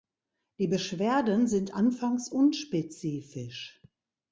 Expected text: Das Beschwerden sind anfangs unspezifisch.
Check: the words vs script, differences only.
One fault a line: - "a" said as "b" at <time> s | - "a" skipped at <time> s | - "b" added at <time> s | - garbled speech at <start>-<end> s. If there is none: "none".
- "Das" said as "Die" at 0.6 s